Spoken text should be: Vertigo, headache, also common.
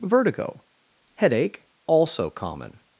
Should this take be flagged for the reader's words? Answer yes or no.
no